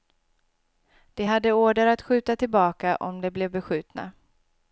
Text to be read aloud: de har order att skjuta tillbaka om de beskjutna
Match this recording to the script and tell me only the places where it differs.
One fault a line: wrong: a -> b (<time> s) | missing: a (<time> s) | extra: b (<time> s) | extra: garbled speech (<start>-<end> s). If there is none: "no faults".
wrong: har -> hade (1.2 s)
extra: blev (3.3 s)